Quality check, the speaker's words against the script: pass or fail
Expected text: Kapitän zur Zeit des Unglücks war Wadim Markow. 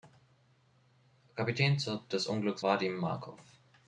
fail